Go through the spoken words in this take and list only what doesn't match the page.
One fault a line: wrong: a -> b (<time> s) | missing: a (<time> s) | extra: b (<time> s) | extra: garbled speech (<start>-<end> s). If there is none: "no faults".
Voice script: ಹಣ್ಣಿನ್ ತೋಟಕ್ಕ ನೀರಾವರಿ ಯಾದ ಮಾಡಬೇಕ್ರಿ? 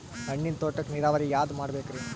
no faults